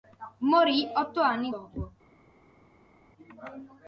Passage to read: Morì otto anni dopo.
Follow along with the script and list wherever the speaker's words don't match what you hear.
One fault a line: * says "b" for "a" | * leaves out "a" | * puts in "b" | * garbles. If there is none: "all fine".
all fine